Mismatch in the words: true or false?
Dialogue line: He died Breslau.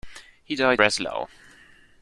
false